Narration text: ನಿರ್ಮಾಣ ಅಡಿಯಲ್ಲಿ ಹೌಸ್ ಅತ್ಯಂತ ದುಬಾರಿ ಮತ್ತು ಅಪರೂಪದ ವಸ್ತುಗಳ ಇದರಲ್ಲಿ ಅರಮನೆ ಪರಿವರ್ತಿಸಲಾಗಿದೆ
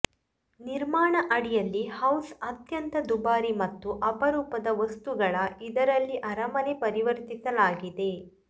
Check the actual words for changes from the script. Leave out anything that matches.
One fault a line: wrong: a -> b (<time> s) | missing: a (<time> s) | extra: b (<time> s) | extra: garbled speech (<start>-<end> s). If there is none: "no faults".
no faults